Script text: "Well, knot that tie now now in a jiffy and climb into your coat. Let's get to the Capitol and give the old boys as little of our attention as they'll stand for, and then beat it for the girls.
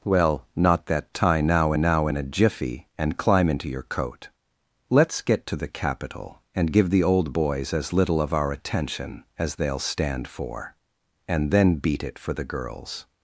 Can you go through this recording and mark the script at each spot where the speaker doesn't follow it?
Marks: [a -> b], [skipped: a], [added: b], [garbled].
"Well, knot that tie now now in a jiffy and climb into your coat. Let's get to the Capitol and give the old boys as little of our attention as they'll stand for, and then beat it for the girls.